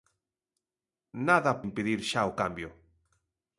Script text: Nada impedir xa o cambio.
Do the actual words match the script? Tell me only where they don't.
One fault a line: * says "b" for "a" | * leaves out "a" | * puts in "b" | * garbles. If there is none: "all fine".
all fine